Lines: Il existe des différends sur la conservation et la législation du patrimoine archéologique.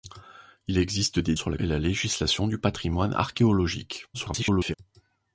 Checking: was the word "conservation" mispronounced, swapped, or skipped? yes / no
yes